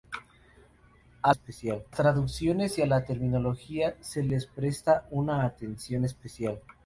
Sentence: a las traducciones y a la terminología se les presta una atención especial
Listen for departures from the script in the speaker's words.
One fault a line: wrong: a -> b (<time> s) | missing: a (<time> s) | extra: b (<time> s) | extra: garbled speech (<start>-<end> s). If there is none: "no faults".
wrong: las -> especial (1.3 s)